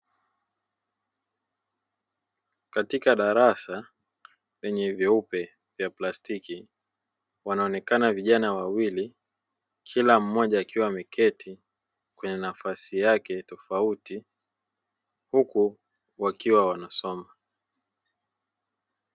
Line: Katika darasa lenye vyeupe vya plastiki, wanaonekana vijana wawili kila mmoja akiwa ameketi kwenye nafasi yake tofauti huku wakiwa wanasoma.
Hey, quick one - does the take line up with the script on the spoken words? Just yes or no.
yes